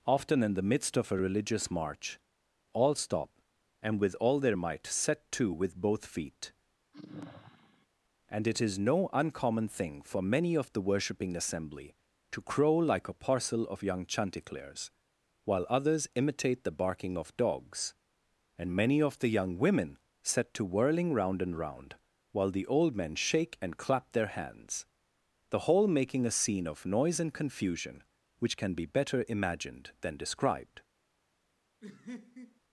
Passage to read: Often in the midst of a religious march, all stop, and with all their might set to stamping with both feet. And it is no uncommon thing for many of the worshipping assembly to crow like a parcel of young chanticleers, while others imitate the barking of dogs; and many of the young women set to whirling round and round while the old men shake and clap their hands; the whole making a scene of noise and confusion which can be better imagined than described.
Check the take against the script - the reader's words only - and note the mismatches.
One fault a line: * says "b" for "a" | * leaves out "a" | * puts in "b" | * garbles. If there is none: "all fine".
* leaves out "stamping"